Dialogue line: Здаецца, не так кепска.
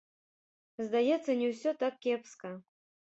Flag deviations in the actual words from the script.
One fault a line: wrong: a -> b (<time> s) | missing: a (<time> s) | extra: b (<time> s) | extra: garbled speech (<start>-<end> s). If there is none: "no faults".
extra: ўсё (1.5 s)